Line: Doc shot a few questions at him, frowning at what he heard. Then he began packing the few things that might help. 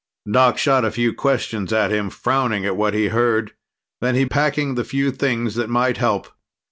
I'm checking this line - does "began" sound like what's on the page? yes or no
no